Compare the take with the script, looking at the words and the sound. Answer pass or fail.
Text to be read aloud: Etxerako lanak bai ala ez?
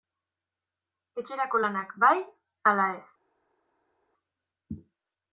pass